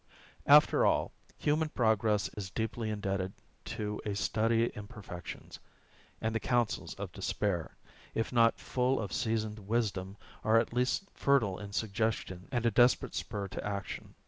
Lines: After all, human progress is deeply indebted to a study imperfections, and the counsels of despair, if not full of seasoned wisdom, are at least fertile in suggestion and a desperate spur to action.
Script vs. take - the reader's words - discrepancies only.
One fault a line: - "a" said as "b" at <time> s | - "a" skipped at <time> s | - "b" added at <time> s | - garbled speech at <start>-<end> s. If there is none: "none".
none